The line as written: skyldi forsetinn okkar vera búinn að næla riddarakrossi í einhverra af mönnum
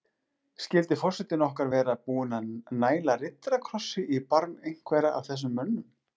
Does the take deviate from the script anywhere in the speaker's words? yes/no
yes